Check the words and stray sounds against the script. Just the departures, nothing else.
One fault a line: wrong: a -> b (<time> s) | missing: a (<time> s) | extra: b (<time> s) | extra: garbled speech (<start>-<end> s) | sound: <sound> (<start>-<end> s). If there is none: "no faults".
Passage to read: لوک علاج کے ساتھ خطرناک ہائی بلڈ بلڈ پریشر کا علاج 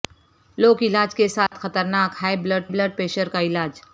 sound: dropout (1.5-1.5 s)